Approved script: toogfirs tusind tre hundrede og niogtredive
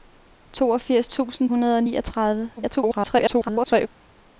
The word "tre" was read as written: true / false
false